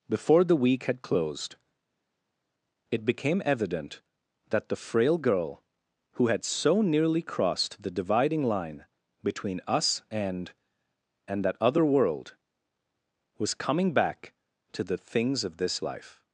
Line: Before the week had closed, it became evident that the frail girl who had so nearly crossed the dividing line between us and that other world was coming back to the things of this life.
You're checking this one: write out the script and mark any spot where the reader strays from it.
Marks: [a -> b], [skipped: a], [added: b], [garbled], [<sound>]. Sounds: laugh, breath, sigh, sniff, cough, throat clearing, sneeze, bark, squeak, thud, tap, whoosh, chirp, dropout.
Before the week had closed, it became evident that the frail girl who had so nearly crossed the dividing line between us and [added: and] that other world was coming back to the things of this life.